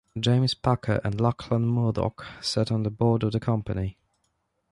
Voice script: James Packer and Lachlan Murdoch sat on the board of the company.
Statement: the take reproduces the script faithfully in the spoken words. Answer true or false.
true